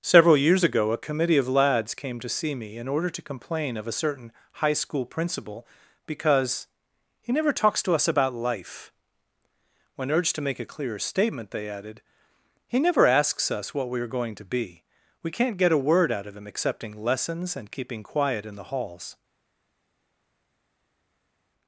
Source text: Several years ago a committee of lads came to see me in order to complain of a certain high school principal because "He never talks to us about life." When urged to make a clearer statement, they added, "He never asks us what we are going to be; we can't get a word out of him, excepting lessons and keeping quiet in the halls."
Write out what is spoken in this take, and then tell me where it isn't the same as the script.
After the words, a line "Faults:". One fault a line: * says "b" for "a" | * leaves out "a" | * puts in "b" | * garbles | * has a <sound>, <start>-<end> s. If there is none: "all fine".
Several years ago a committee of lads came to see me in order to complain of a certain high school principal because "He never talks to us about life." When urged to make a clearer statement, they added, "He never asks us what we are going to be; we can't get a word out of him, excepting lessons and keeping quiet in the halls."
Faults:
all fine